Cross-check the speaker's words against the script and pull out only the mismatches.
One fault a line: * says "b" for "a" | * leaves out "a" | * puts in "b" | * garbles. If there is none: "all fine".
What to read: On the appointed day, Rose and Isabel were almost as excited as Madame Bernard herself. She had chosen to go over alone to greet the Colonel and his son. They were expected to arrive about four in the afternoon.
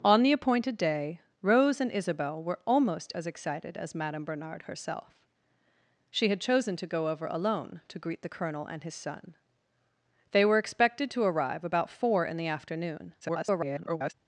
* garbles